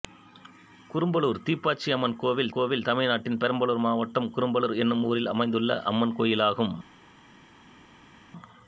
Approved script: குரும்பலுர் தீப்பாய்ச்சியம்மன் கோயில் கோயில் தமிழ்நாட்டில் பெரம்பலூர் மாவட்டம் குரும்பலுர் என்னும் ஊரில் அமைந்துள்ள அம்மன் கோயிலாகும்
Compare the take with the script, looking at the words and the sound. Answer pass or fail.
pass